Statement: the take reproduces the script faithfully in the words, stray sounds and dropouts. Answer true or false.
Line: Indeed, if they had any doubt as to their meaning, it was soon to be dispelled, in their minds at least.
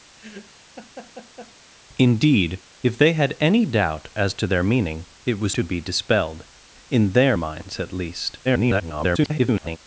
false